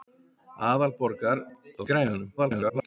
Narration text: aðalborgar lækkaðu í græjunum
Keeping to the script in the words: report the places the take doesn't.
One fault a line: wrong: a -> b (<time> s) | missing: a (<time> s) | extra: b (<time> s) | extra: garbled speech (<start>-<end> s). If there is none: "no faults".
missing: lækkaðu (1.4 s)
extra: garbled speech (2.4-2.9 s)